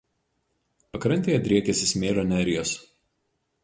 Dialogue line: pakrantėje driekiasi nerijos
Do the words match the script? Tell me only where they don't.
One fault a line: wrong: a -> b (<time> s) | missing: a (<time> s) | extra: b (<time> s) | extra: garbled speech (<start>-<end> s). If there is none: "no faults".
extra: smėlio (1.9 s)